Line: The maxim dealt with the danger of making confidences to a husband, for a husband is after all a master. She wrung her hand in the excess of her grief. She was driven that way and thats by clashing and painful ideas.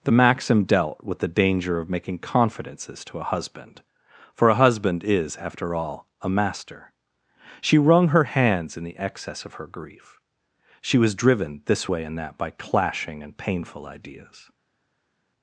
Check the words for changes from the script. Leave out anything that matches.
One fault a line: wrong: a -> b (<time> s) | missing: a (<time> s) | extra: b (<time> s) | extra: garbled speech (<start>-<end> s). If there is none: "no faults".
wrong: hand -> hands (8.2 s)
wrong: that -> this (11.7 s)
wrong: thats -> that (12.2 s)